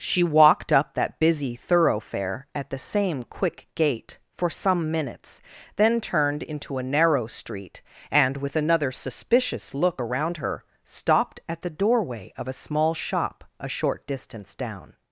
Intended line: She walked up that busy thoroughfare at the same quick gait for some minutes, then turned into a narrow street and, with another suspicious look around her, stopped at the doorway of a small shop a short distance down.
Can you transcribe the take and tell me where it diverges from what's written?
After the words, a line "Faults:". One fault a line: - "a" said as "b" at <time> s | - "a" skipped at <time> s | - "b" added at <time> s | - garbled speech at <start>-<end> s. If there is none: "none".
She walked up that busy thoroughfare at the same quick gait for some minutes, then turned into a narrow street and, with another suspicious look around her, stopped at the doorway of a small shop a short distance down.
Faults:
none